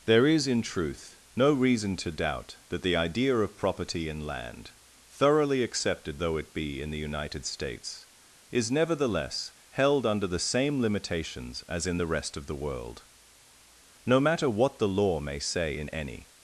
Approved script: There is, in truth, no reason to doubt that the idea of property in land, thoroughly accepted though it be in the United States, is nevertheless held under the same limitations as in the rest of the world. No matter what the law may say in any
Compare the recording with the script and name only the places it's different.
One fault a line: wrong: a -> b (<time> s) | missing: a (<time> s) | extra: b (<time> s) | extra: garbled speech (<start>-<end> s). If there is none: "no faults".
no faults